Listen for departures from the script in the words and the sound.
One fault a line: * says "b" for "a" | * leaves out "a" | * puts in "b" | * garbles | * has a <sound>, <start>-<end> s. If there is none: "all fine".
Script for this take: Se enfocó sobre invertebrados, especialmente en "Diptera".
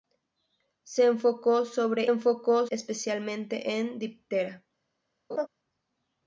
* says "enfocó" for "invertebrados"
* has a laugh, 5.3-5.5 s